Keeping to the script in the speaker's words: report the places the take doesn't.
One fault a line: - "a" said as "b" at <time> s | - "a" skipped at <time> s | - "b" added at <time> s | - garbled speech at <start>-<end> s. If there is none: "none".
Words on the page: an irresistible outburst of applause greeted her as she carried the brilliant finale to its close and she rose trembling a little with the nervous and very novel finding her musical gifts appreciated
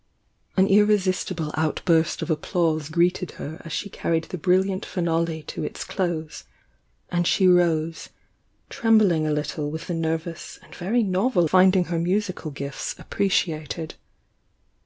none